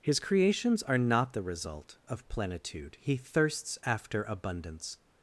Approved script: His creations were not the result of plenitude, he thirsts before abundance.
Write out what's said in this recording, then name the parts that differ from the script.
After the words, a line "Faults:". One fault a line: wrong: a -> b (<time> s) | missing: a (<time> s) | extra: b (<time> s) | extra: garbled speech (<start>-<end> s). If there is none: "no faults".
His creations are not the result of plenitude, he thirsts after abundance.
Faults:
wrong: were -> are (0.8 s)
wrong: before -> after (3.8 s)